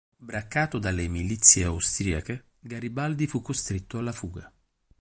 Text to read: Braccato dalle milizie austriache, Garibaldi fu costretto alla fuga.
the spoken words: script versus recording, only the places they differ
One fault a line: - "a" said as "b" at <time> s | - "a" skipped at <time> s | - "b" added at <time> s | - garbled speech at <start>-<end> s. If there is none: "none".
none